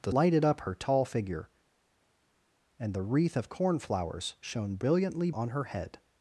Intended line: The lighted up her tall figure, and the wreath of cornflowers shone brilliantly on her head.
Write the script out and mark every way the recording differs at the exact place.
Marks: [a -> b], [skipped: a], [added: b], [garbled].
The lighted up her tall figure, and the wreath of cornflowers shone brilliantly on her head.